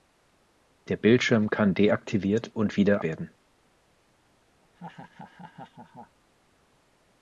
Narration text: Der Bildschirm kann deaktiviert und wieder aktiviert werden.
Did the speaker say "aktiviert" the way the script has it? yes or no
no